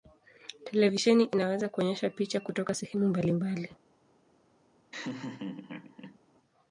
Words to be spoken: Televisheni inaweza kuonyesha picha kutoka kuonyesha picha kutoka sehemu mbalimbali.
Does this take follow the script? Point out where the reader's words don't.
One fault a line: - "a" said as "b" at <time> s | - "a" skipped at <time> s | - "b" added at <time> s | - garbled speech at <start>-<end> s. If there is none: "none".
- "kuonyesha picha kutoka" skipped at 2.7 s